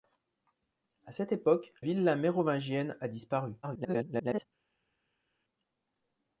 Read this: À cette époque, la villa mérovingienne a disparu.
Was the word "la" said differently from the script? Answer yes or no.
yes